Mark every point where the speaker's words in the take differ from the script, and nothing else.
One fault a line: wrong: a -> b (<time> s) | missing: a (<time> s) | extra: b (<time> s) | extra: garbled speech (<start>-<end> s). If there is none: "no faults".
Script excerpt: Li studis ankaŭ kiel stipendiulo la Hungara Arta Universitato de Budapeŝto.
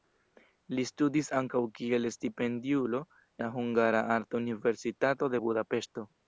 no faults